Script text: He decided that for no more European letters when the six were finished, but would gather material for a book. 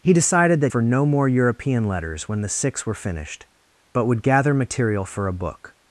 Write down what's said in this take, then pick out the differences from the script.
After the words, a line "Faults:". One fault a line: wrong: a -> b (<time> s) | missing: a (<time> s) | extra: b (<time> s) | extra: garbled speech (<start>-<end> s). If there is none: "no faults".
He decided that for no more European letters when the six were finished, but would gather material for a book.
Faults:
no faults